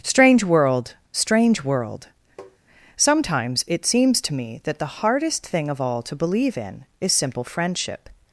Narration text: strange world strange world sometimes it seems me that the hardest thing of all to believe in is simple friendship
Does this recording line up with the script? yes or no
no